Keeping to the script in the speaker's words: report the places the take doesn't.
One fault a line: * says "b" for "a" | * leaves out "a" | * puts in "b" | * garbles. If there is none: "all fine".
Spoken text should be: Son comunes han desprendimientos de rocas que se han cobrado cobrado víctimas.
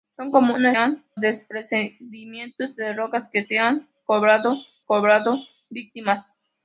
all fine